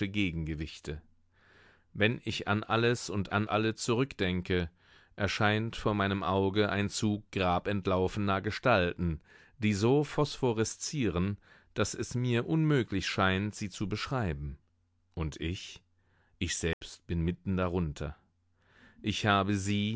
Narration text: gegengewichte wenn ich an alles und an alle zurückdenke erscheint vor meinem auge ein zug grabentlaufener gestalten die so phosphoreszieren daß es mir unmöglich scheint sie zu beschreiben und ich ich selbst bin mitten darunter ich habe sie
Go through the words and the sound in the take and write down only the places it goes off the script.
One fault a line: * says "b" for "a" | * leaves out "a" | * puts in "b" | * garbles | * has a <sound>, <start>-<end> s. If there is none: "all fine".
* has a dropout, 16.7-16.8 s